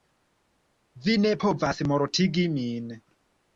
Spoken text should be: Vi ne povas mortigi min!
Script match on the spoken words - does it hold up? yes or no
yes